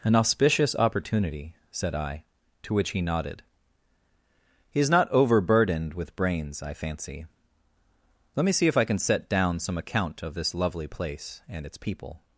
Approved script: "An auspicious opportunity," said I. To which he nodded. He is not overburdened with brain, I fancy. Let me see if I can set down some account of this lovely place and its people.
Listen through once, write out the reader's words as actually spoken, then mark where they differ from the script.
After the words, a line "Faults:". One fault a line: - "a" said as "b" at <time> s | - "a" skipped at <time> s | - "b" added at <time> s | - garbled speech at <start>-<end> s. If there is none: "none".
"An auspicious opportunity," said I. To which he nodded. He is not overburdened with brains, I fancy. Let me see if I can set down some account of this lovely place and its people.
Faults:
- "brain" said as "brains" at 6.2 s